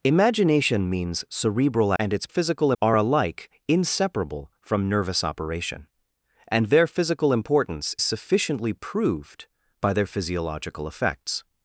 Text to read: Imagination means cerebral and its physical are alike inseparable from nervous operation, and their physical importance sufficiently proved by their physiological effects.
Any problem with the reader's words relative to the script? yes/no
no